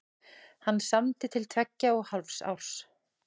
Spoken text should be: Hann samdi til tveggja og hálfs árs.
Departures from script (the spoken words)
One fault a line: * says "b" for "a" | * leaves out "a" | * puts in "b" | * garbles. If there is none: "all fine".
all fine